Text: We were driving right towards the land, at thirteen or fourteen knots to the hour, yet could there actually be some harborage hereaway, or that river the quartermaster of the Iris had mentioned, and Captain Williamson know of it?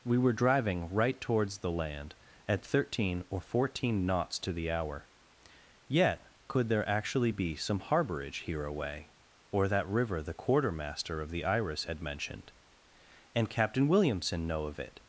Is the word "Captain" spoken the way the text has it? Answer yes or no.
yes